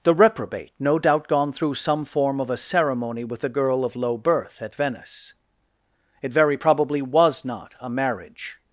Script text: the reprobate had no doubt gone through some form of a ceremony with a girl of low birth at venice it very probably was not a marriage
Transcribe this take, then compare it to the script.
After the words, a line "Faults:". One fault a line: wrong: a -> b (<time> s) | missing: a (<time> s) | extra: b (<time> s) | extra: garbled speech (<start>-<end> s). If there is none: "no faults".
the reprobate no doubt gone through some form of a ceremony with a girl of low birth at venice it very probably was not a marriage
Faults:
missing: had (0.7 s)